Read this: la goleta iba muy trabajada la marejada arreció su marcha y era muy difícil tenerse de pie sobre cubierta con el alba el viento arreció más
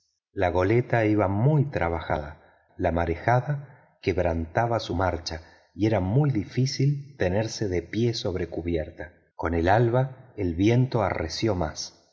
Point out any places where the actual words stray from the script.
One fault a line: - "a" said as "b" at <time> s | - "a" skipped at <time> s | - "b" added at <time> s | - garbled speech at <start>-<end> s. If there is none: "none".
- "arreció" said as "quebrantaba" at 4.0 s